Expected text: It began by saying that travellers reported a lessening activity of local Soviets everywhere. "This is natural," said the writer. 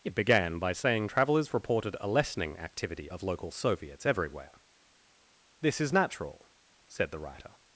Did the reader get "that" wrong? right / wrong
wrong